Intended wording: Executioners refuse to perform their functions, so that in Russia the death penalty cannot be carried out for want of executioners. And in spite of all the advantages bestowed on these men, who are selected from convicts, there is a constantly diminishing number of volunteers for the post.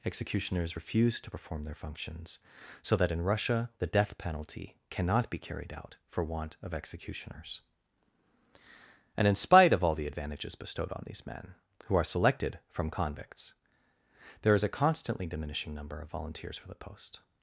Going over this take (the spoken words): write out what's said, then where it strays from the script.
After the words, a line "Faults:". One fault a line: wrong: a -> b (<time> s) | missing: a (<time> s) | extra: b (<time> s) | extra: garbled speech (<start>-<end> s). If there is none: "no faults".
Executioners refuse to perform their functions, so that in Russia the death penalty cannot be carried out for want of executioners. And in spite of all the advantages bestowed on these men, who are selected from convicts, there is a constantly diminishing number of volunteers for the post.
Faults:
no faults